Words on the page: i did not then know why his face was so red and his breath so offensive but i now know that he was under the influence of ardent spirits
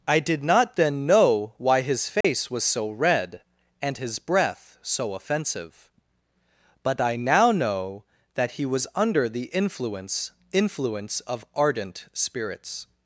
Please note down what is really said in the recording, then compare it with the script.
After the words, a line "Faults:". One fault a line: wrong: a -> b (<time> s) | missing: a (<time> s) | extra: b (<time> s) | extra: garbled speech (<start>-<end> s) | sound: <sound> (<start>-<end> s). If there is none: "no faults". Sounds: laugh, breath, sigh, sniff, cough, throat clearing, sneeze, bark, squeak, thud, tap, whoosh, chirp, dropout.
i did not then know why his face was so red and his breath so offensive but i now know that he was under the influence influence of ardent spirits
Faults:
sound: dropout (2.2-2.2 s)
extra: influence (10.5 s)